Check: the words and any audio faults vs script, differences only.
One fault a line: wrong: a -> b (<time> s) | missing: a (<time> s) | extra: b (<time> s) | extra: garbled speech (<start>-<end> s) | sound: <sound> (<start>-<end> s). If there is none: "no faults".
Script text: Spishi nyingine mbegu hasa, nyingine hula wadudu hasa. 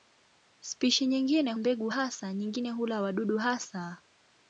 no faults